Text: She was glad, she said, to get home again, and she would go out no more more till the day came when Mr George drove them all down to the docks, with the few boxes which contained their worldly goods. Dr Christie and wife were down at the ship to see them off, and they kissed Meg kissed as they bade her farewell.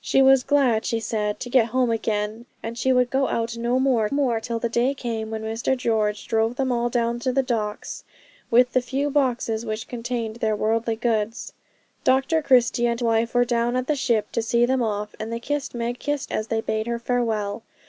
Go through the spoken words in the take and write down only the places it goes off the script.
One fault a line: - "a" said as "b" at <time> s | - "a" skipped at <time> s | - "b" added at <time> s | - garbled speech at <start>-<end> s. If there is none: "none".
none